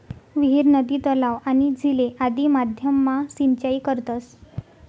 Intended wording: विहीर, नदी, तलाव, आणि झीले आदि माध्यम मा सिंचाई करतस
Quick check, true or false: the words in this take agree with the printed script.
true